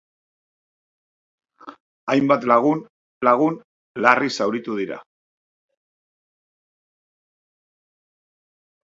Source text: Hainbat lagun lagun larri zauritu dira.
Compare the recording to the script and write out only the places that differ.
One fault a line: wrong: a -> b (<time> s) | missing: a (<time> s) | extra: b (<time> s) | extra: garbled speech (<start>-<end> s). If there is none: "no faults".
no faults